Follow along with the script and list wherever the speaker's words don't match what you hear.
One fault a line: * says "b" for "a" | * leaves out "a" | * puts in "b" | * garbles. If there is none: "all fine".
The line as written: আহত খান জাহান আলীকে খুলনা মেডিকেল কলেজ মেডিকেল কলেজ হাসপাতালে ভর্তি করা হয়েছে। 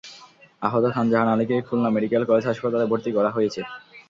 * leaves out "মেডিকেল কলেজ"